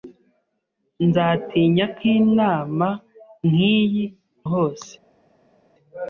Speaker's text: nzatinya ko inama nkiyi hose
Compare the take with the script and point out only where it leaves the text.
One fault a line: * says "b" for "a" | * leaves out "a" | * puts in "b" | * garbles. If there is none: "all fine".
all fine